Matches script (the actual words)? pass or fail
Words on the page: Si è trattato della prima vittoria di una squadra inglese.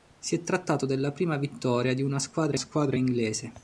fail